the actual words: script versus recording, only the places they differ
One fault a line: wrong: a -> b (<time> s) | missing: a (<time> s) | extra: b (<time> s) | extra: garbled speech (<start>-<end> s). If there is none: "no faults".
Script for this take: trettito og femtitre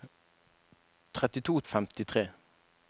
no faults